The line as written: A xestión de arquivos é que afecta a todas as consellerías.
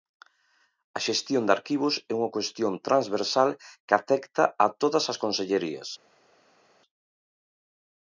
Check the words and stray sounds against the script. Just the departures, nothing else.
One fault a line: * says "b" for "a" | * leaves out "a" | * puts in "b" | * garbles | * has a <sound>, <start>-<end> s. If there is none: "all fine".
* puts in "unha cuestión transversal"